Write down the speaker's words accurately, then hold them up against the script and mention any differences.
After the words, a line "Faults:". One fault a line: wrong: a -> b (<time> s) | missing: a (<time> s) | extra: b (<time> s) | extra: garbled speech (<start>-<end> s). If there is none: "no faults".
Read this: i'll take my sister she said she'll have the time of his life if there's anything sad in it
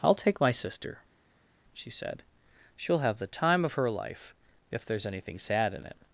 i'll take my sister she said she'll have the time of her life if there's anything sad in it
Faults:
wrong: his -> her (3.7 s)